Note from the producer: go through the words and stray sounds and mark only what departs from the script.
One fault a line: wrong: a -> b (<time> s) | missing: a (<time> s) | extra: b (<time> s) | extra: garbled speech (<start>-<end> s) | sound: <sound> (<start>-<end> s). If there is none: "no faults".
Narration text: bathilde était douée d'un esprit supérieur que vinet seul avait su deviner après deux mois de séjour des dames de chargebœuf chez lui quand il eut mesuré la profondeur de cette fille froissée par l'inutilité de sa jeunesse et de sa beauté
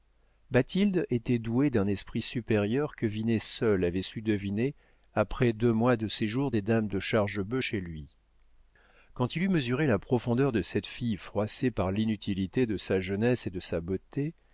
no faults